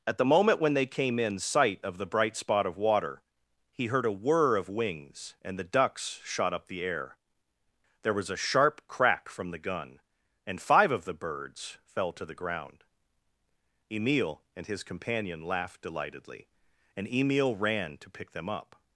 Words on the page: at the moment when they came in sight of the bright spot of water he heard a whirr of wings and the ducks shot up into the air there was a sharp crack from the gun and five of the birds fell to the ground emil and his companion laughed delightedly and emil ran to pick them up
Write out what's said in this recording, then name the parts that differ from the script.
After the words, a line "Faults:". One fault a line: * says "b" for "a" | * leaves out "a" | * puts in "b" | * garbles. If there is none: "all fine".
at the moment when they came in sight of the bright spot of water he heard a whirr of wings and the ducks shot up the air there was a sharp crack from the gun and five of the birds fell to the ground emil and his companion laughed delightedly and emil ran to pick them up
Faults:
* leaves out "into"